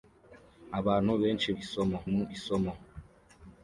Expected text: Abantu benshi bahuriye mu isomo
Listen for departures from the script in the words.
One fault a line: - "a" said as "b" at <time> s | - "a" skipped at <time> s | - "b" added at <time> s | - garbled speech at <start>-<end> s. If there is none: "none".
- "bahuriye" said as "isomo" at 1.6 s